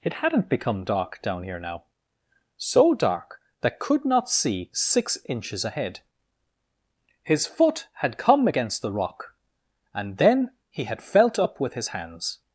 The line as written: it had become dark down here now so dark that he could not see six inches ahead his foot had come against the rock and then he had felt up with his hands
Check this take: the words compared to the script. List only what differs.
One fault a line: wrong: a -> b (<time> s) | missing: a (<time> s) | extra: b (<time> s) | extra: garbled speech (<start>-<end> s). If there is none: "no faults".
wrong: had -> hadn't (0.1 s)
missing: he (3.8 s)